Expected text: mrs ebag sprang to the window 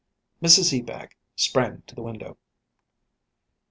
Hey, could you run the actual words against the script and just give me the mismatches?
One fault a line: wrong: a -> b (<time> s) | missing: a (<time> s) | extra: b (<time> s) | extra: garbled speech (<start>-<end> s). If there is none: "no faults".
no faults